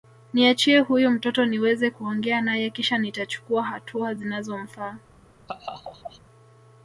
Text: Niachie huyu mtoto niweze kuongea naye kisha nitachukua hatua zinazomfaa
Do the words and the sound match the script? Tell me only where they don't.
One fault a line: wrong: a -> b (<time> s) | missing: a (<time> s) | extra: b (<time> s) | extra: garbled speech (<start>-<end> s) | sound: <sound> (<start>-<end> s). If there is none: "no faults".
sound: laugh (5.5-6.2 s)